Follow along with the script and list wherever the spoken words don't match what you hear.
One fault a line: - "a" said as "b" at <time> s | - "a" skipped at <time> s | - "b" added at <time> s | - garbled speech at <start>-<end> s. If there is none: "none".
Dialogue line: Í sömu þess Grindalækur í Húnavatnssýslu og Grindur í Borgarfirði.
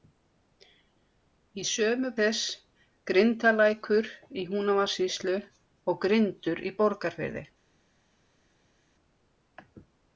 none